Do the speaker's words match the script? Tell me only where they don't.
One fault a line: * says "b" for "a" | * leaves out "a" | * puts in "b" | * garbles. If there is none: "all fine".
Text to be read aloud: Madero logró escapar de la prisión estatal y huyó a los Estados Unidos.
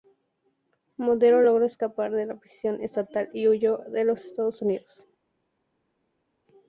all fine